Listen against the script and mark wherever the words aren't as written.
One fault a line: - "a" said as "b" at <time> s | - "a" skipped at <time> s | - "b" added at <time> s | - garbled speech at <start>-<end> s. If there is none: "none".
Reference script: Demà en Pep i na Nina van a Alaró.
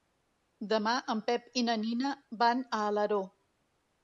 none